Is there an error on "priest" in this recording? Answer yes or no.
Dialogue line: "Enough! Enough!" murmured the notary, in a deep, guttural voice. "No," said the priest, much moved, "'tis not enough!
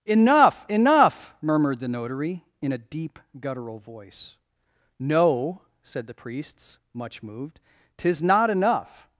yes